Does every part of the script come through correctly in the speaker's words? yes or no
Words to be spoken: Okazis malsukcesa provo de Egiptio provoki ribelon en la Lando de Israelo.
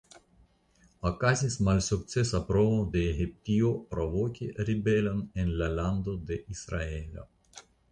yes